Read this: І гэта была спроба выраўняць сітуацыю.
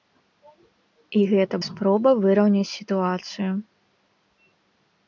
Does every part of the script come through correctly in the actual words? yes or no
no